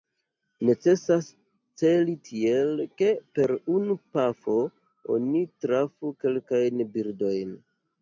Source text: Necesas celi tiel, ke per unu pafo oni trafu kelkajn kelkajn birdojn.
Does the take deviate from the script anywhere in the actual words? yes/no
yes